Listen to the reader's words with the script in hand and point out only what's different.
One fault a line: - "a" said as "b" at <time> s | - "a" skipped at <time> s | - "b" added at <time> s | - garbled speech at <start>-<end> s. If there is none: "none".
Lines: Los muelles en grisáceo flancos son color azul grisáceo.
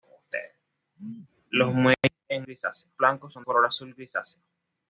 none